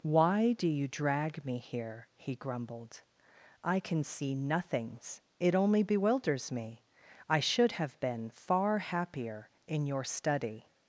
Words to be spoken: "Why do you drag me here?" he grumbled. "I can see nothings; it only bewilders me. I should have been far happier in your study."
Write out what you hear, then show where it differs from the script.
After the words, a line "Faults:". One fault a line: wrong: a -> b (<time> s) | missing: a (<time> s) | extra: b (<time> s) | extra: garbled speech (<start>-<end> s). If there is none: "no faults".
"Why do you drag me here?" he grumbled. "I can see nothings; it only bewilders me. I should have been far happier in your study."
Faults:
no faults